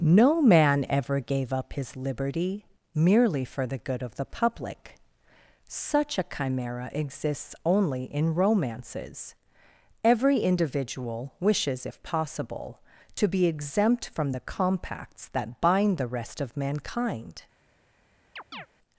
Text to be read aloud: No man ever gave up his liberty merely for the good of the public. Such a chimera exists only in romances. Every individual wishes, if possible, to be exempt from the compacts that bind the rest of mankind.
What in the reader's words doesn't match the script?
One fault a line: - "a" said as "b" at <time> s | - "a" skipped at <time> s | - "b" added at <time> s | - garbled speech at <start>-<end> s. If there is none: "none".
none